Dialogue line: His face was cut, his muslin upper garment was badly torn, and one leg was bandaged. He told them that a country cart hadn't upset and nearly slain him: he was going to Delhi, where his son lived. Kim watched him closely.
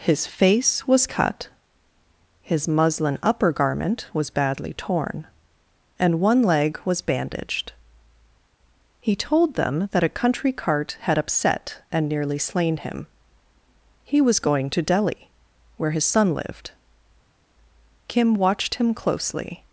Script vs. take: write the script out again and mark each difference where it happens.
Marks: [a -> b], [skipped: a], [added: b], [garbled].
His face was cut, his muslin upper garment was badly torn, and one leg was bandaged. He told them that a country cart [hadn't -> had] upset and nearly slain him: he was going to Delhi, where his son lived. Kim watched him closely.